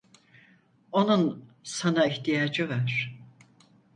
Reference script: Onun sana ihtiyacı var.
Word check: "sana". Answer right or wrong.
right